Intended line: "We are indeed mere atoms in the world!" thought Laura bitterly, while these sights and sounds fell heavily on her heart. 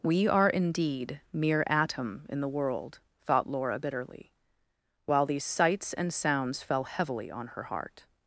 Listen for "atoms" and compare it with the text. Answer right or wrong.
wrong